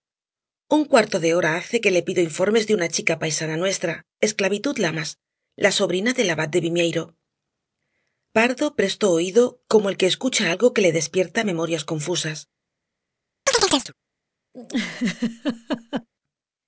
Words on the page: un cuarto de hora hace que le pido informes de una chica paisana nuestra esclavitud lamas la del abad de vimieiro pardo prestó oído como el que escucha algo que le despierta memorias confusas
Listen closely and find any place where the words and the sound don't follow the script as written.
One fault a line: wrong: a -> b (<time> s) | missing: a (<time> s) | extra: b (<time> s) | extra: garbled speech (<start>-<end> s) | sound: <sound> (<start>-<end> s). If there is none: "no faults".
extra: sobrina (5.8 s)
sound: chirp (13.5-13.9 s)
sound: laugh (14.5-16.1 s)